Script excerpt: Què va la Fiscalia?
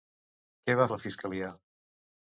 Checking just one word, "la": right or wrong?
right